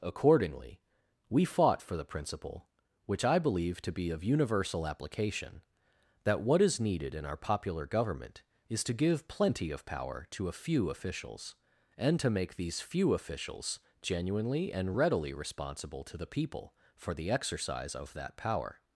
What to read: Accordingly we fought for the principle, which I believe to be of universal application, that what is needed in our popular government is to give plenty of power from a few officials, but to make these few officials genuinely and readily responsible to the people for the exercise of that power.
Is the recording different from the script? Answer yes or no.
yes